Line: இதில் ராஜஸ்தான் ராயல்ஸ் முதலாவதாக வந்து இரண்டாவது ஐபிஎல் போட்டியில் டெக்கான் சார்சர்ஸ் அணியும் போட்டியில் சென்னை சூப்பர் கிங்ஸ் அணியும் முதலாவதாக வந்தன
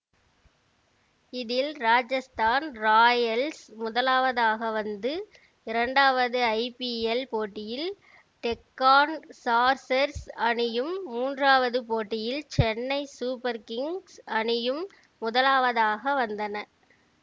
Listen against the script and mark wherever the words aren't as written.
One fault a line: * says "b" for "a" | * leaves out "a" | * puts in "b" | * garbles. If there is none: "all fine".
* puts in "மூன்றாவது"